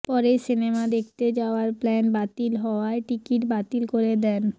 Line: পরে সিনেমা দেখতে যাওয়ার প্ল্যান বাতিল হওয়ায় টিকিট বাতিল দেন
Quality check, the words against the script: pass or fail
fail